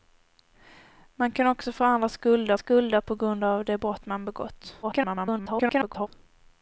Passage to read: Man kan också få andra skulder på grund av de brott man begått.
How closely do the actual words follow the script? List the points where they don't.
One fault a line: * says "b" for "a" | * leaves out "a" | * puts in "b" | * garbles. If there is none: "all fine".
* puts in "skulder"
* garbles